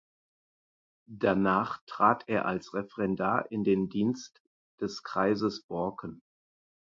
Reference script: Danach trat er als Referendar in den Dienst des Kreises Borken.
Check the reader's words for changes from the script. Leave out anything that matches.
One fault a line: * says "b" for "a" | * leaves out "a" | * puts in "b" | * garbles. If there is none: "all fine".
all fine